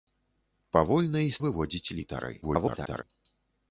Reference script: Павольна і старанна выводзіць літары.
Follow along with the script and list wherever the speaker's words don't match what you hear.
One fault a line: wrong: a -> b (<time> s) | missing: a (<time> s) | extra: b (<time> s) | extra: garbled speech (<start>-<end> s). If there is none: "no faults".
missing: старанна (1.4 s)
extra: garbled speech (2.4-3.0 s)